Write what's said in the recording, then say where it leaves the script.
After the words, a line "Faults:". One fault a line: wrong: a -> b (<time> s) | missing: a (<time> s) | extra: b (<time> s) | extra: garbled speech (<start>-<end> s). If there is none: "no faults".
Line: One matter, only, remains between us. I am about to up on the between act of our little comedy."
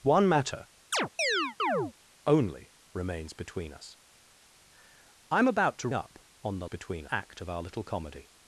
One matter, only, remains between us. I am about to up on the between act of our little comedy."
Faults:
no faults